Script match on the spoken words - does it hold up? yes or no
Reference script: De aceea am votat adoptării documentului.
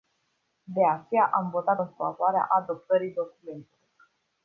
no